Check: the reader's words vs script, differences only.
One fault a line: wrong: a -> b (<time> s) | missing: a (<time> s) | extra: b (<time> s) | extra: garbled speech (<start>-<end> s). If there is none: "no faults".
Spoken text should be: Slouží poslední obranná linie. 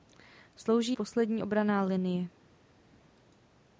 no faults